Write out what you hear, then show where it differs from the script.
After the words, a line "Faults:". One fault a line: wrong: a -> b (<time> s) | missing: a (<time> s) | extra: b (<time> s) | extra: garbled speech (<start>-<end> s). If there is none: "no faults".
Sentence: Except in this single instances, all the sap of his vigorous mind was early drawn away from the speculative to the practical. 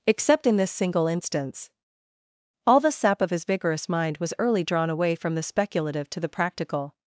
Except in this single instance, all the sap of his vigorous mind was early drawn away from the speculative to the practical.
Faults:
wrong: instances -> instance (1.1 s)